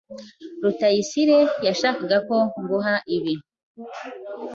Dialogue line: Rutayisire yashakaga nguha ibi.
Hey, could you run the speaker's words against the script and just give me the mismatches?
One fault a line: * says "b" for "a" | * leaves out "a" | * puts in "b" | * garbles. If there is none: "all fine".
* puts in "ko"